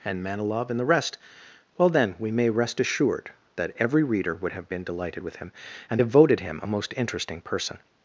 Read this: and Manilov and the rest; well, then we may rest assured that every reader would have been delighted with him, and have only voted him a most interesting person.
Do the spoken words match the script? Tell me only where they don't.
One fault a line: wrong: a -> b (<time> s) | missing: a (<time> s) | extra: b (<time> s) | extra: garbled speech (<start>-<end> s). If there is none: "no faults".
missing: only (6.1 s)